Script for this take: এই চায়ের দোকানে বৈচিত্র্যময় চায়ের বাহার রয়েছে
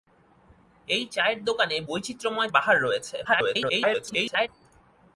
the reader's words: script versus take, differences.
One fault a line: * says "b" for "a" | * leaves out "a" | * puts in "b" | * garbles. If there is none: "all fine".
* leaves out "চায়ের"
* garbles